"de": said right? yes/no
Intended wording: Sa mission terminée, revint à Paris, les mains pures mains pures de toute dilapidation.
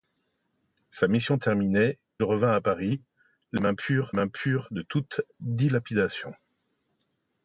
yes